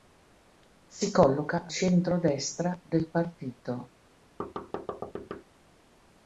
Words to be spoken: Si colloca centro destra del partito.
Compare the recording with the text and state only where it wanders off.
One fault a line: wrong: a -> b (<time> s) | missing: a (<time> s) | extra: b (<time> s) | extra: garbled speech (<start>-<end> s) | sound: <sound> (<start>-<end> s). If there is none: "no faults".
sound: thud (4.4-5.4 s)